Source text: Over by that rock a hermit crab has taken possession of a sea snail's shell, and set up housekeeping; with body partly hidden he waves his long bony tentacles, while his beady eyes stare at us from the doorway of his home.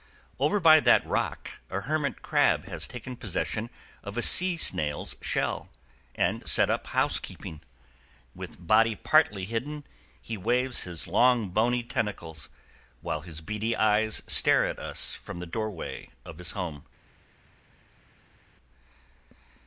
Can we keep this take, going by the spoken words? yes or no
yes